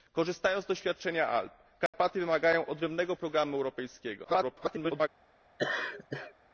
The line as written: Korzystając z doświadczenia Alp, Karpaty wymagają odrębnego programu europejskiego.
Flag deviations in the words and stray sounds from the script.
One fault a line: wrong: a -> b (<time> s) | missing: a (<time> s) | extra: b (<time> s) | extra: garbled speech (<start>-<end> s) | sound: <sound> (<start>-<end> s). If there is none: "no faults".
sound: dropout (1.9-1.9 s)
extra: garbled speech (4.2-5.1 s)
sound: laugh (5.6-6.3 s)